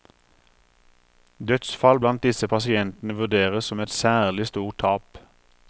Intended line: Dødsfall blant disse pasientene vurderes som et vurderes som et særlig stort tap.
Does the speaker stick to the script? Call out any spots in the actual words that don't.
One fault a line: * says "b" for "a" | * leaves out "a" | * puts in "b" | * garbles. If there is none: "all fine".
* leaves out "vurderes som et"